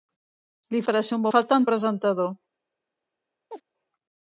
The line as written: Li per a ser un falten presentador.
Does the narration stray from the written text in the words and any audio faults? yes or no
yes